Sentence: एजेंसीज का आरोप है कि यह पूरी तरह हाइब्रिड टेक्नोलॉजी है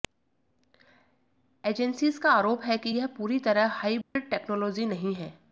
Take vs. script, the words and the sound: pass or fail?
fail